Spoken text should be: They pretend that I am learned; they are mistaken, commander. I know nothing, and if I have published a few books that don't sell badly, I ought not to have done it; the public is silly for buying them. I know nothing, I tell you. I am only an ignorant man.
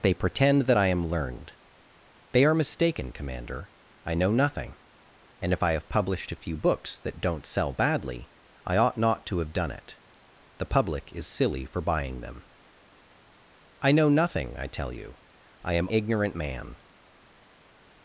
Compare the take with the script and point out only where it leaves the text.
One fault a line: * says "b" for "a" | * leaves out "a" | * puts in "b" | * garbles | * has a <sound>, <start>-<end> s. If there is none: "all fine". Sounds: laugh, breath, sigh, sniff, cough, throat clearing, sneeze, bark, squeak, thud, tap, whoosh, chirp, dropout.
* leaves out "only an"